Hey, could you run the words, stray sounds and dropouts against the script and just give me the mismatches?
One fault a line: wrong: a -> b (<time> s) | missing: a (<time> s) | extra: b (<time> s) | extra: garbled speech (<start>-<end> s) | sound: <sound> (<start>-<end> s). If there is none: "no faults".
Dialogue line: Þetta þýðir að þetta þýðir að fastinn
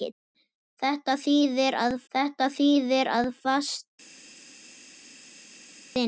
no faults